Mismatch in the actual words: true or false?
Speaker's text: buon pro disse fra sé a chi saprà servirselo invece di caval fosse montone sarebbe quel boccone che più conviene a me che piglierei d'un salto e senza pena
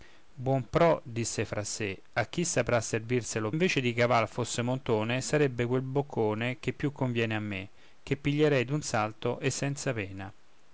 false